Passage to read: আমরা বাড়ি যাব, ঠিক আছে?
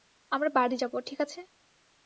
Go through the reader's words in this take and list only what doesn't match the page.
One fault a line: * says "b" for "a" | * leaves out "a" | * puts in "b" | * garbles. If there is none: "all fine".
all fine